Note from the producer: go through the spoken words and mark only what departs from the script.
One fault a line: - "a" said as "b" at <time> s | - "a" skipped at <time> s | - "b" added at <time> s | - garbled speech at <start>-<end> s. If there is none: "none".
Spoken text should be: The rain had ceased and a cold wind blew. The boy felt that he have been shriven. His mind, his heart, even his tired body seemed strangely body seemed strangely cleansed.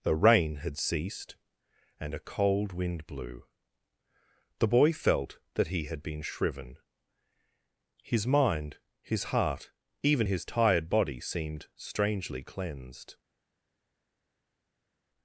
- "have" said as "had" at 5.8 s
- "body seemed strangely" skipped at 12.4 s